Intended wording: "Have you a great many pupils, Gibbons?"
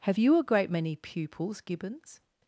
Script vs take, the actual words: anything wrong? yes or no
no